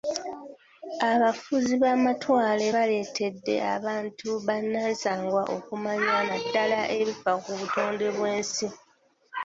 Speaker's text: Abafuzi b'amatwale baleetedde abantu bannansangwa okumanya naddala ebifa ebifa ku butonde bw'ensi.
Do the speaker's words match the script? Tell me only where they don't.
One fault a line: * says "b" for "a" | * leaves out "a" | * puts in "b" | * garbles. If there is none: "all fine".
* leaves out "ebifa"